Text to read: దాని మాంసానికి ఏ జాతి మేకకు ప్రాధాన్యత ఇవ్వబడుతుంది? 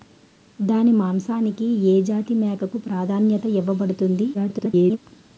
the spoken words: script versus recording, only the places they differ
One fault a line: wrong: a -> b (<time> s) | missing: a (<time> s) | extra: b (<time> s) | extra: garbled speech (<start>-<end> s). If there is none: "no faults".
extra: garbled speech (4.3-5.0 s)